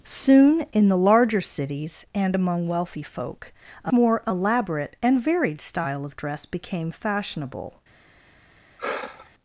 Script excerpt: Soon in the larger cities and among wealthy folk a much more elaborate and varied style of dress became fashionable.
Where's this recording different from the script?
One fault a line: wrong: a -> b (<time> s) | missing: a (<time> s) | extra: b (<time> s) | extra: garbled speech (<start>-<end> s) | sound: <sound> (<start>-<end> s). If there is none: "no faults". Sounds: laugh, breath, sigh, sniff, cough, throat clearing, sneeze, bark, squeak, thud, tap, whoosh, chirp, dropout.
missing: much (3.9 s)
sound: sigh (8.8-9.3 s)